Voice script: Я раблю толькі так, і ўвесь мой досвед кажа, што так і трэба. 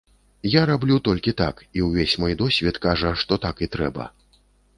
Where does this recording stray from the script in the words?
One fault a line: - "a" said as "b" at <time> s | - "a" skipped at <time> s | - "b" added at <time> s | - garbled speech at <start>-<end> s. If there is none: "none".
none